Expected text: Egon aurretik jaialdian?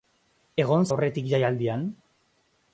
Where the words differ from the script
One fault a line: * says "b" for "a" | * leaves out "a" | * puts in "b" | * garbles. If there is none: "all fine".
all fine